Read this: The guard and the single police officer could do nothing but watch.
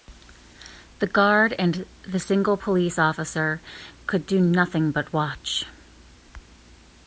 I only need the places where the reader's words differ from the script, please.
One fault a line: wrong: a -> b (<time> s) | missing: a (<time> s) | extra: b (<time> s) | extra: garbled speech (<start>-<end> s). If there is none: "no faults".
no faults